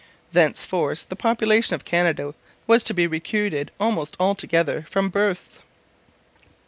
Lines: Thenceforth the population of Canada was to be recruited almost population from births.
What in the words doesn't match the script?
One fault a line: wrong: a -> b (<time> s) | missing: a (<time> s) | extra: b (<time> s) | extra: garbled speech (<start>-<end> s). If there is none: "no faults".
wrong: population -> altogether (4.2 s)